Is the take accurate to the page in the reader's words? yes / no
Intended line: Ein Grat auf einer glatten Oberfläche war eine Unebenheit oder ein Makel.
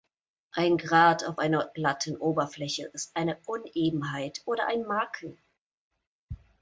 no